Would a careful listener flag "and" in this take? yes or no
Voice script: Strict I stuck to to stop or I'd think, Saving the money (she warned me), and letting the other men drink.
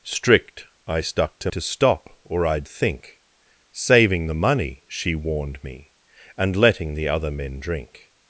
no